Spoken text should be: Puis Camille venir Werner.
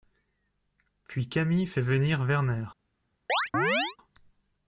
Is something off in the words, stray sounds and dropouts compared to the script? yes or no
yes